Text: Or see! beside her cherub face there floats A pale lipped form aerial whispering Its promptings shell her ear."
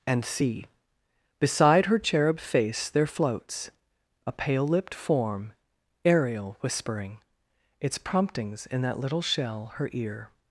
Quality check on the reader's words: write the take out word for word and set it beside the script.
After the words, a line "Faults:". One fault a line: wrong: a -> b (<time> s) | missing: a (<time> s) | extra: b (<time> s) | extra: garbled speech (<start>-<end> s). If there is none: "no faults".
And see! beside her cherub face there floats A pale lipped form aerial whispering Its promptings in that little shell her ear."
Faults:
wrong: Or -> And (0.1 s)
extra: in that little (8.7 s)